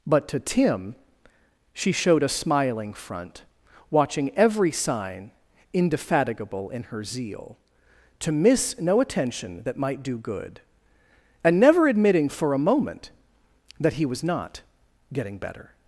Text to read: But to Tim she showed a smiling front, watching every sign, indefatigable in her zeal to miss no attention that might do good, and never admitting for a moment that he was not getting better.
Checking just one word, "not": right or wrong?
right